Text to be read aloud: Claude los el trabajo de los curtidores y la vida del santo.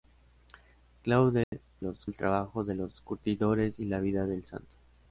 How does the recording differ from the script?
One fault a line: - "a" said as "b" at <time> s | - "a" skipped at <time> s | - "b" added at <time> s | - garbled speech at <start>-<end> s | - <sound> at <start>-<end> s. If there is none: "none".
- dropout at 1.4-1.5 s